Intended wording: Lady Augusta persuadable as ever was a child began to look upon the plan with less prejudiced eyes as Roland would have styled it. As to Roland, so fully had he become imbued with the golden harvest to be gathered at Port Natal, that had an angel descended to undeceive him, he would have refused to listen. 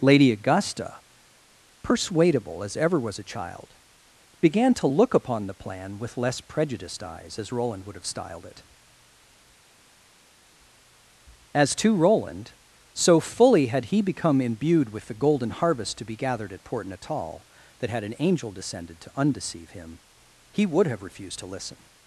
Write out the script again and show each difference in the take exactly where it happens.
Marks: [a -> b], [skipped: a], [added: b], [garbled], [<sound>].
Lady Augusta persuadable as ever was a child began to look upon the plan with less prejudiced eyes as Roland would have styled it. As to Roland, so fully had he become imbued with the golden harvest to be gathered at Port Natal, that had an angel descended to undeceive him, he would have refused to listen.